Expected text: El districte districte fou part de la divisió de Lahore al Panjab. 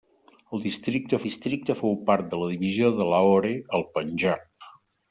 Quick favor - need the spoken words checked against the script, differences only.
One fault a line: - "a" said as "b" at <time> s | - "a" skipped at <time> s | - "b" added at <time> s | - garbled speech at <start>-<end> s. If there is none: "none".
none